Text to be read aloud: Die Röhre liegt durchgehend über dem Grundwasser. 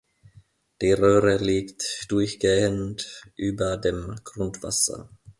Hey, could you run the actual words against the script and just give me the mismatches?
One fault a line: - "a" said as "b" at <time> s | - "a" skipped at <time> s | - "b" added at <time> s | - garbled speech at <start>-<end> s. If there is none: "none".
none